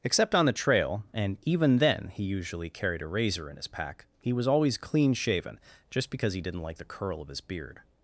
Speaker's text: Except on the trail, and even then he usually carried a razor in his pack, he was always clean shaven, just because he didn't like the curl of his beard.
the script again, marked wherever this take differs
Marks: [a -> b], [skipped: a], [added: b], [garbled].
Except on the trail, and even then he usually carried a razor in his pack, he was always clean shaven, just because he didn't like the curl of his beard.